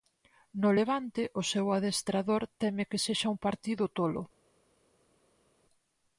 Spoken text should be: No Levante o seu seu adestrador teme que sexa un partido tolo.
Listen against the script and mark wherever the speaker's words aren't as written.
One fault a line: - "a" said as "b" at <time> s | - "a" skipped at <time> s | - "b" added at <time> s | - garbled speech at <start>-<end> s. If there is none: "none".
- "seu" skipped at 1.6 s